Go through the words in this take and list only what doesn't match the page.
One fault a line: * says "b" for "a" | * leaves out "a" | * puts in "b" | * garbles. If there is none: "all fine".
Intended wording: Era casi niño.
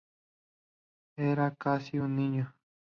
* puts in "un"